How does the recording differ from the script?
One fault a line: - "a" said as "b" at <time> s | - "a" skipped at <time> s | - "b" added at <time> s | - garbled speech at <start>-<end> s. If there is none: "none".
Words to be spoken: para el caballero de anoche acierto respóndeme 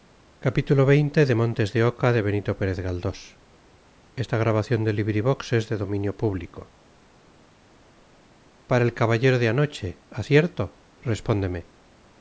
none